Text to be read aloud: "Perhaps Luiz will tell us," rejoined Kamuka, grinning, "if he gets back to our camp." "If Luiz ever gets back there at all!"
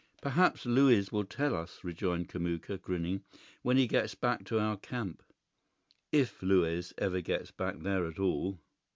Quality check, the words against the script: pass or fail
fail